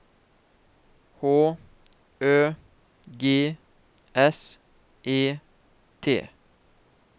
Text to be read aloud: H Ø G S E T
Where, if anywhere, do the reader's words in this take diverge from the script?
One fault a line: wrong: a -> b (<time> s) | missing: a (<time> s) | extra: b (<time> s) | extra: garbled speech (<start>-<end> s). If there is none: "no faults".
no faults